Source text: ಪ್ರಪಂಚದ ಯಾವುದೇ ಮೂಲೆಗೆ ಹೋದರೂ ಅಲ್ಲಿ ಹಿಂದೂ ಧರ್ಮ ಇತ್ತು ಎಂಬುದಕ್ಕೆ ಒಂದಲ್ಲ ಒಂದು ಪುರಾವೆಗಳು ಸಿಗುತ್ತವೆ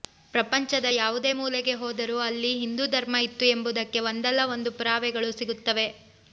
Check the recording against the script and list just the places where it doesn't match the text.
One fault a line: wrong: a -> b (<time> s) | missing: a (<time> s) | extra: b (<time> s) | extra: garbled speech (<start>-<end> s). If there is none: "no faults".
no faults